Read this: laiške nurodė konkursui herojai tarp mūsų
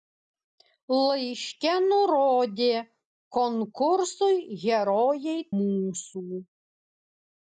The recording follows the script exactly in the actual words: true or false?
false